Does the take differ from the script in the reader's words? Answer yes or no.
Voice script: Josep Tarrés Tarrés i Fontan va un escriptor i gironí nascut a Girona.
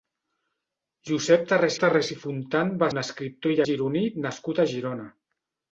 no